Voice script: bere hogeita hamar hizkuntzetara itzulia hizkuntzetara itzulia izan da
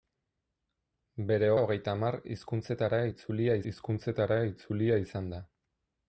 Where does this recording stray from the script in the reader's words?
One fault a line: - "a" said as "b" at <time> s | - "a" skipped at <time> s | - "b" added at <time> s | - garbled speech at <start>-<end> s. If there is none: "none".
none